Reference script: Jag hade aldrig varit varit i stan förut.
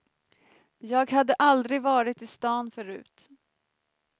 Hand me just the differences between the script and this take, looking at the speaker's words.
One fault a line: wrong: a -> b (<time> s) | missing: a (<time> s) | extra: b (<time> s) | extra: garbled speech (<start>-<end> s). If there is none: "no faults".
missing: varit (2.2 s)